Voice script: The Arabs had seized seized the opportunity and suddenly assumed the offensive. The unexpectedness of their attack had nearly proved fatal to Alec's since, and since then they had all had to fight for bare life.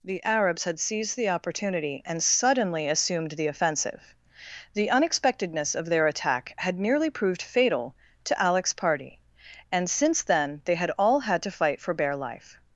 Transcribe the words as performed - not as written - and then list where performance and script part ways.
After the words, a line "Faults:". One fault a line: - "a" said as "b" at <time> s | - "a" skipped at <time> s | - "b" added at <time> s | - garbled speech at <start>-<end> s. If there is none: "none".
The Arabs had seized the opportunity and suddenly assumed the offensive. The unexpectedness of their attack had nearly proved fatal to Alec's party, and since then they had all had to fight for bare life.
Faults:
- "seized" skipped at 1.1 s
- "since" said as "party" at 8.7 s